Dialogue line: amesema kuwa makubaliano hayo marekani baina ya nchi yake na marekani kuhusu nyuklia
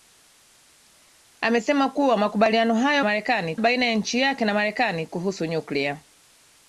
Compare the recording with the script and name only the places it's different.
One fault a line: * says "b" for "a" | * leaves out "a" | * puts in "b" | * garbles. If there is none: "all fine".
all fine